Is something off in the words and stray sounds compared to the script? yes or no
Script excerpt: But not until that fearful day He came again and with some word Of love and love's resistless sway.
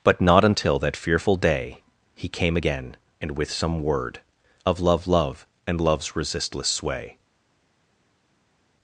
yes